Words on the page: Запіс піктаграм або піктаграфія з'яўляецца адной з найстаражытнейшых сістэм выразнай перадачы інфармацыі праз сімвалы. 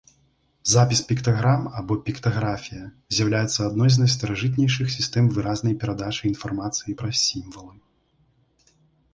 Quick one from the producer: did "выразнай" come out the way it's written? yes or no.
yes